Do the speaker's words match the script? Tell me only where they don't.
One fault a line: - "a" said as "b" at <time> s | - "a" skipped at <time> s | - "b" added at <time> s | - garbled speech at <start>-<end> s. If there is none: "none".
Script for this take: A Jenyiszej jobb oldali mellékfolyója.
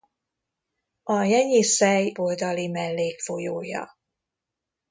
- "jobb" skipped at 2.1 s